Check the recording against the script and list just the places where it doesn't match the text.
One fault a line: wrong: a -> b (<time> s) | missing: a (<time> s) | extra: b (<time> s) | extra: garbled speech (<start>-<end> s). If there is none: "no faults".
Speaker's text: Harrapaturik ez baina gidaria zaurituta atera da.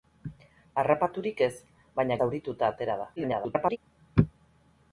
missing: gidaria (2.2 s)
extra: garbled speech (3.2-3.8 s)